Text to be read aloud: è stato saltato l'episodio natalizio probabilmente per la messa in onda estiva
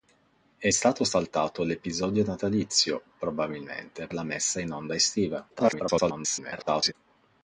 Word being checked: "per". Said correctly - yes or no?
no